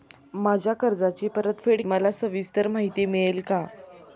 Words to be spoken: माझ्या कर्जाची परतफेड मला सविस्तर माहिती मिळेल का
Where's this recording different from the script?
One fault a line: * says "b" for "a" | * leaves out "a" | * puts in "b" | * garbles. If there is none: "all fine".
all fine